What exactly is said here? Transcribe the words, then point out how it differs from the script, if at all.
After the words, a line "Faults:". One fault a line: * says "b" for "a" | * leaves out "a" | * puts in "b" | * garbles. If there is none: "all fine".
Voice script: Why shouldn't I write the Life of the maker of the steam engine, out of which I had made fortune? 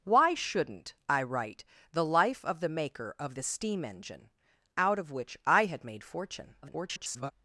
Why shouldn't I write the Life of the maker of the steam engine, out of which I had made fortune? [garbled]
Faults:
* garbles